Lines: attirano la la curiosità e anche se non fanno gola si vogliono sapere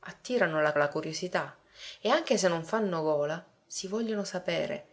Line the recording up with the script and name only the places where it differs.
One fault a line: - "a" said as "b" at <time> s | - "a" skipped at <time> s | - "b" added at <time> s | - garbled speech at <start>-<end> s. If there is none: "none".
none